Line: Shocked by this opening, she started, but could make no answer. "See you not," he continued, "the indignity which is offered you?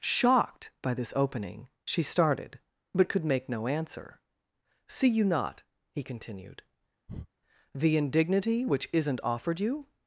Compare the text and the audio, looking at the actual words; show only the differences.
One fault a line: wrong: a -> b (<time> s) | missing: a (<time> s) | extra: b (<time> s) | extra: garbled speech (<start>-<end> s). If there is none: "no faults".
wrong: is -> isn't (8.9 s)